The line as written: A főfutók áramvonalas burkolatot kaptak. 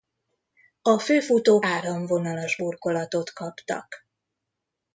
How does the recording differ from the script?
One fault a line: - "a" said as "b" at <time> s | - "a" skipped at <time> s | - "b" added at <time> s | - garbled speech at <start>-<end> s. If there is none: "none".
none